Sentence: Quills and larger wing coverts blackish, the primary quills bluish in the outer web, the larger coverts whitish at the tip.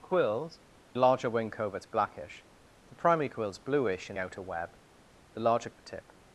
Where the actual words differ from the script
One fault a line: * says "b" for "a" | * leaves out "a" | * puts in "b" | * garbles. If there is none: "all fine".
* leaves out "and"
* leaves out "the"
* leaves out "coverts whitish"